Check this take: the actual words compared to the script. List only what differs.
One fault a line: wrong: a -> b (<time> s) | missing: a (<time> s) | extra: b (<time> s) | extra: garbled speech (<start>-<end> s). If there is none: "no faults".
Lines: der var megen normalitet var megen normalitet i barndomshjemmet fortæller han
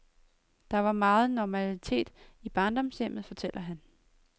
missing: var megen normalitet (2.1 s)